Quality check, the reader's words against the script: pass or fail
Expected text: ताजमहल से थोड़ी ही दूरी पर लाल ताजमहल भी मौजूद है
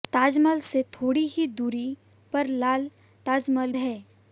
fail